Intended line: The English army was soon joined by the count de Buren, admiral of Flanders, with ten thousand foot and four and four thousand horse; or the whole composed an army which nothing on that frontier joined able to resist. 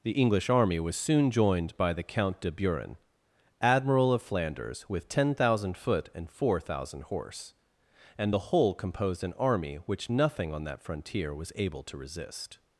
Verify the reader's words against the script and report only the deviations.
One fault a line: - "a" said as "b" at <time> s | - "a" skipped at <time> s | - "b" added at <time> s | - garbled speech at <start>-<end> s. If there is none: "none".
- "and four" skipped at 6.6 s
- "or" said as "and" at 8.2 s
- "joined" said as "was" at 11.3 s